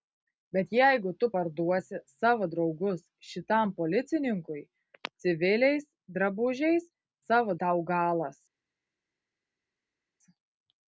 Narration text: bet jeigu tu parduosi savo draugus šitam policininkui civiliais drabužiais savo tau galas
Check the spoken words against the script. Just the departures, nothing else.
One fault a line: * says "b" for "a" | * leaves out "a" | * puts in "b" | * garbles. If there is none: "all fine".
all fine